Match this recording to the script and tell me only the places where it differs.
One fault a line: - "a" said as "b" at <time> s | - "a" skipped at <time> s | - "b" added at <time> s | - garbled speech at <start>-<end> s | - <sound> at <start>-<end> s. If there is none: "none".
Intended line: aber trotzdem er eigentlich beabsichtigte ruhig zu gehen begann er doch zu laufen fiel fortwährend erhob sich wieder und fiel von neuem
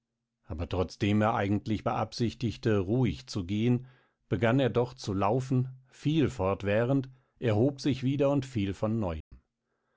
- dropout at 9.2-9.3 s